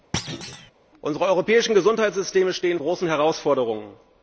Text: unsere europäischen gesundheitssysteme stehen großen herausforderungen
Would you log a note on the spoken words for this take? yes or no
no